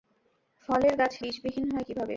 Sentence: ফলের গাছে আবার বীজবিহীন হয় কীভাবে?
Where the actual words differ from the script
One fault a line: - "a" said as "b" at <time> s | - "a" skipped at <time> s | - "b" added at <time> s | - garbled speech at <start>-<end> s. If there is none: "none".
- "আবার" skipped at 1.2 s